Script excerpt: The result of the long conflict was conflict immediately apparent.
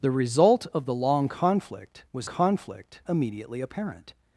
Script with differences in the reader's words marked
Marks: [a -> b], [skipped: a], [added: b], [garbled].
The result of the long conflict was conflict immediately apparent.